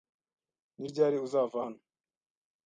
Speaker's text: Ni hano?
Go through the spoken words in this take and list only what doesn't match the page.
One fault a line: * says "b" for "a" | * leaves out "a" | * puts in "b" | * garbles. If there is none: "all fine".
* puts in "ryari uzava"